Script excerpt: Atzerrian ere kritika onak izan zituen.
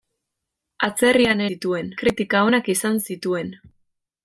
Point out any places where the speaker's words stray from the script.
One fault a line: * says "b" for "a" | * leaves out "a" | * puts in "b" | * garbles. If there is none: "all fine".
* says "zituen" for "ere"